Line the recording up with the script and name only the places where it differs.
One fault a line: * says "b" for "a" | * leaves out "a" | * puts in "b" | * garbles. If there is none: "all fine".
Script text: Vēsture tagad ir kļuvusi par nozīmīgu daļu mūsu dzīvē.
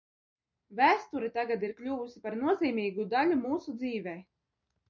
all fine